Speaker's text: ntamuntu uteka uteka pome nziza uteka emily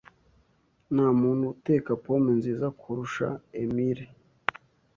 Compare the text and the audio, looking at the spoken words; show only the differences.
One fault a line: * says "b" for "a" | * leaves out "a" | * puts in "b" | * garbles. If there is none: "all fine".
* leaves out "uteka"
* says "kurusha" for "uteka"